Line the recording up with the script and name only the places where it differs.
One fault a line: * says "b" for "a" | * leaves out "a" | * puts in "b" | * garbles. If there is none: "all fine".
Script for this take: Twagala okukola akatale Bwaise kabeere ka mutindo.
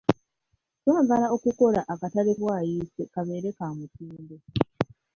all fine